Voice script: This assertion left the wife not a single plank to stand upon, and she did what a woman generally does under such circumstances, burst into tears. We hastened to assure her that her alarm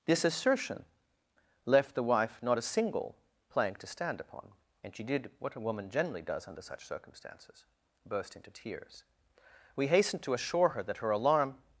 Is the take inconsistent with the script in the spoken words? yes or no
no